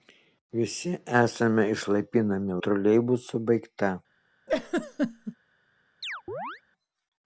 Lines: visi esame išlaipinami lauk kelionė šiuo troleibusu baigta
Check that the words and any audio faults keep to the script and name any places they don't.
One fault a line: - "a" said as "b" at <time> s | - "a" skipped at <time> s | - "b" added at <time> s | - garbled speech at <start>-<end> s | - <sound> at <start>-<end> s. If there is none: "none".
- "lauk kelionė šiuo" skipped at 2.6 s
- laugh at 4.5-5.4 s
- chirp at 6.0-6.6 s